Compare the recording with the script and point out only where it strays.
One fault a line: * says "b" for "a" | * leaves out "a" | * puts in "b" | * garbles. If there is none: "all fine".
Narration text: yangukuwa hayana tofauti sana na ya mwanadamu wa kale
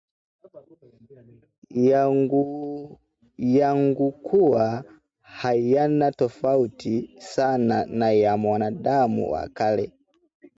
all fine